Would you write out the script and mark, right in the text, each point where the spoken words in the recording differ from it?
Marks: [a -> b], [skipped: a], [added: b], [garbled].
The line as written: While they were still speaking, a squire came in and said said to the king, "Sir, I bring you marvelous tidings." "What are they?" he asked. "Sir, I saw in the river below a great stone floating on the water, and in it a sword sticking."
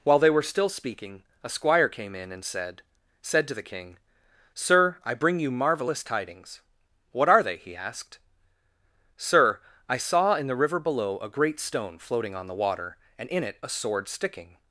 While they were still speaking, a squire came in and said said to the king, "Sir, I bring you marvelous tidings." "What are they?" he asked. "Sir, I saw in the river below a great stone floating on the water, and in it a sword sticking."